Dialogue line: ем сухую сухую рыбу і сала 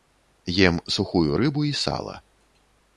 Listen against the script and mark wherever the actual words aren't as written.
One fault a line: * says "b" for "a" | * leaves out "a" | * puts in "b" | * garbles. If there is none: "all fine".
* leaves out "сухую"